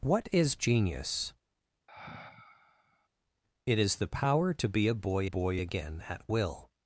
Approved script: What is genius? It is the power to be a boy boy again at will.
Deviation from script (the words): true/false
false